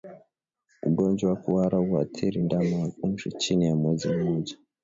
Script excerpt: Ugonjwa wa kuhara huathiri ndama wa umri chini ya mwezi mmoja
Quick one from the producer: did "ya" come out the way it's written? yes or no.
yes